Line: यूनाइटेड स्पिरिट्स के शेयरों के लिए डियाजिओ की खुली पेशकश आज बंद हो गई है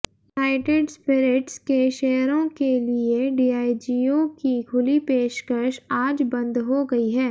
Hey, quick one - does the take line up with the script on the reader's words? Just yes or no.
yes